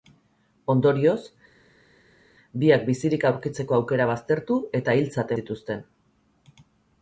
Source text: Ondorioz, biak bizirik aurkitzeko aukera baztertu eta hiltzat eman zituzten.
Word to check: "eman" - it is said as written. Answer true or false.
false